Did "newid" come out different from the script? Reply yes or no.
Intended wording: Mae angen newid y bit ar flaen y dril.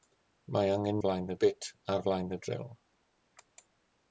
yes